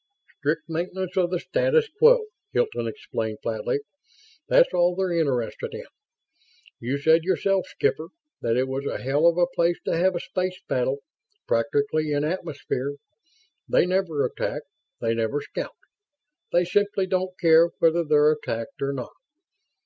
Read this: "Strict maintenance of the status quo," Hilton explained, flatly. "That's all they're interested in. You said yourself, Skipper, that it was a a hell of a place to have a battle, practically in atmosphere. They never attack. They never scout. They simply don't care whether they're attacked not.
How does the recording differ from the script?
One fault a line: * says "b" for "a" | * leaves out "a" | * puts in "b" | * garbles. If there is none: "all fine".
* leaves out "a"
* puts in "space"
* puts in "or"